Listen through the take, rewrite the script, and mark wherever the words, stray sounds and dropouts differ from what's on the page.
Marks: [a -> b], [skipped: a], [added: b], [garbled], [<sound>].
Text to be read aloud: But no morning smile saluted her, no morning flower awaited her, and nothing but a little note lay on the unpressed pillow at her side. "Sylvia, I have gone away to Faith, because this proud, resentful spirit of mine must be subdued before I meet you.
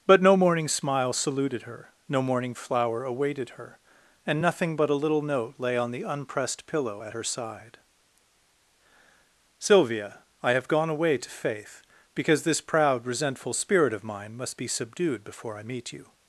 But no morning smile saluted her, no morning flower awaited her, and nothing but a little note lay on the unpressed pillow at her side. "Sylvia, I have gone away to Faith, because this proud, resentful spirit of mine must be subdued before I meet you.